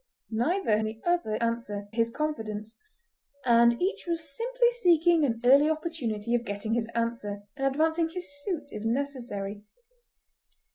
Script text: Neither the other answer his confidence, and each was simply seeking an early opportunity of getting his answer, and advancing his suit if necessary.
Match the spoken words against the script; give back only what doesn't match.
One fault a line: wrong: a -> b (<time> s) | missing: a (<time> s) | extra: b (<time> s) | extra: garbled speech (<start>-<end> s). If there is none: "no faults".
no faults